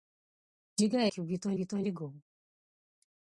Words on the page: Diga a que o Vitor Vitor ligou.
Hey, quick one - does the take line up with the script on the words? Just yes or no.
yes